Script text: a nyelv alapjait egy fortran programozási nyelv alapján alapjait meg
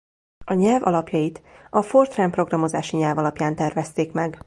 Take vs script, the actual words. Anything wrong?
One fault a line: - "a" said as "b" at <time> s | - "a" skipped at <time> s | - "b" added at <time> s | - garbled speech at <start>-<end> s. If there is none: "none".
- "egy" said as "a" at 1.7 s
- "alapjait" said as "tervezték" at 3.6 s